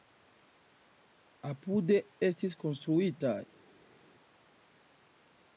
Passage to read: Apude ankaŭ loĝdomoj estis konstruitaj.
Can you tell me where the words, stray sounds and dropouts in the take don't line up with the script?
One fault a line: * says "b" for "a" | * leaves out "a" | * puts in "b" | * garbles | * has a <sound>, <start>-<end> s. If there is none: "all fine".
* leaves out "ankaŭ loĝdomoj"